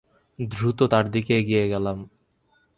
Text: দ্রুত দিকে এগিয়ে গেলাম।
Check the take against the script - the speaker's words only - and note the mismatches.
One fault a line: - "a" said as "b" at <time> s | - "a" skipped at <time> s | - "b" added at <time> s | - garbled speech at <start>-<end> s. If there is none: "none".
- "তার" added at 0.9 s